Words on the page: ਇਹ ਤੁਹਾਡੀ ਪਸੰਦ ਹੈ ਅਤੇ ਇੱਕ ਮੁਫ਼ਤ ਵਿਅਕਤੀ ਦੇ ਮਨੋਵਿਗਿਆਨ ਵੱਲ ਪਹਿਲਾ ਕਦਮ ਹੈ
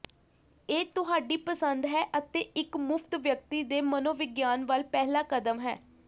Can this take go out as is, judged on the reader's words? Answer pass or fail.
pass